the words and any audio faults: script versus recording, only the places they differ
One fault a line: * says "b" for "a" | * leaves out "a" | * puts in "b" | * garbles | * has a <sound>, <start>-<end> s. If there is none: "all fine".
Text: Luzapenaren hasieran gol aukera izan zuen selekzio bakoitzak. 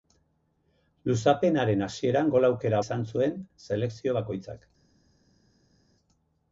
all fine